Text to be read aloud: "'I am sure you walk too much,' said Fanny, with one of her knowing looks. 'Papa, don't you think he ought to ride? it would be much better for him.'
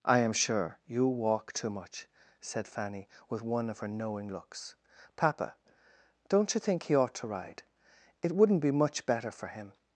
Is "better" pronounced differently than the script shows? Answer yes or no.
no